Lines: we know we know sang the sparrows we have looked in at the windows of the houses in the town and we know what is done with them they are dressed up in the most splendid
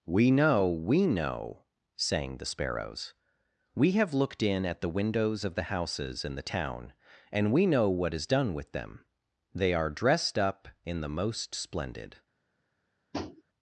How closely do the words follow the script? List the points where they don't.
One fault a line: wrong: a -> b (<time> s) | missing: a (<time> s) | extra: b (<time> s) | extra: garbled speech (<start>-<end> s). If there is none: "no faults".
no faults